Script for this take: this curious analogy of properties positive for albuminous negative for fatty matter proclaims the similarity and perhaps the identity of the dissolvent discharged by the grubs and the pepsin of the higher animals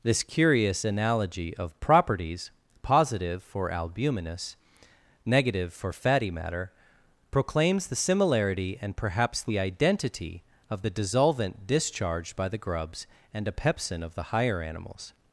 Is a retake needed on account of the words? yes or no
yes